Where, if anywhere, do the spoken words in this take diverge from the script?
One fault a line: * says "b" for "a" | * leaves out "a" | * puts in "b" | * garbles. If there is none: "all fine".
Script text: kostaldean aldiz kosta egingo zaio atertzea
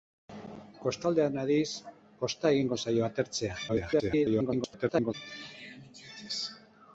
* garbles